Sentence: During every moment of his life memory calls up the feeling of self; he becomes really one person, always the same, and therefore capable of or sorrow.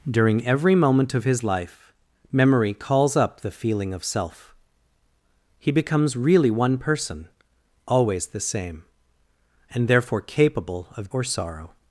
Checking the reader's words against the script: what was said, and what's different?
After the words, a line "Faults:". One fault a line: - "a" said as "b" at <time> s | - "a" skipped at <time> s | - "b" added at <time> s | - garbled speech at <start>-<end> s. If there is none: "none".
During every moment of his life memory calls up the feeling of self; he becomes really one person, always the same, and therefore capable of or sorrow.
Faults:
none